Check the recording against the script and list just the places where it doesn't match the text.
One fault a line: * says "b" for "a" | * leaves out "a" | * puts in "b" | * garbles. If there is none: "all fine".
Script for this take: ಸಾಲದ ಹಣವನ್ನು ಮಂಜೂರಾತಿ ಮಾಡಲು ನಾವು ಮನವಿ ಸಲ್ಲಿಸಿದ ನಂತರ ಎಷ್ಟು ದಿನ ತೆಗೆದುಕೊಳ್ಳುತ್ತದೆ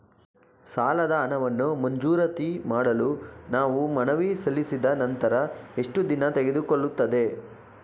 all fine